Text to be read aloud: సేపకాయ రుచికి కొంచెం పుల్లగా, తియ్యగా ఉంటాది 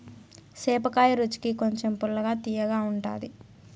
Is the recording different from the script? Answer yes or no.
no